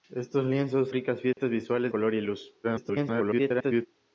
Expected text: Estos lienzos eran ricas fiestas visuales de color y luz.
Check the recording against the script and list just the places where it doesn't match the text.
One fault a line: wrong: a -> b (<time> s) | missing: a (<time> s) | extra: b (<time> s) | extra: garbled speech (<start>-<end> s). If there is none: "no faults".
missing: eran (0.9 s)
missing: de (1.9 s)
extra: garbled speech (2.6-3.9 s)